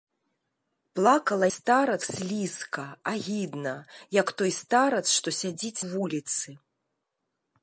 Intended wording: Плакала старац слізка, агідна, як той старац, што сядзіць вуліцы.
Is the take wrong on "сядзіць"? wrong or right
right